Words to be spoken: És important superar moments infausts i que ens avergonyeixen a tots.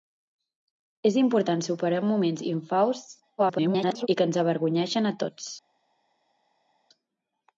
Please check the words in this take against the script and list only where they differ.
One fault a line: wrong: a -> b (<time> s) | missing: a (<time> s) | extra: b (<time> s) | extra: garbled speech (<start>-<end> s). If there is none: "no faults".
extra: garbled speech (3.4-4.1 s)